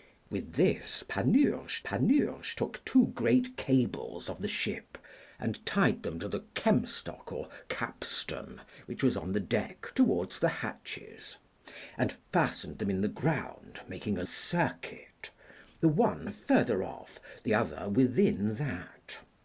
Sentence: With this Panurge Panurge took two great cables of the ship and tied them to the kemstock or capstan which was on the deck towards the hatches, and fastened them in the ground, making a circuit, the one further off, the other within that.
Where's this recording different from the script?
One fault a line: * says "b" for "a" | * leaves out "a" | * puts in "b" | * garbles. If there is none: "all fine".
all fine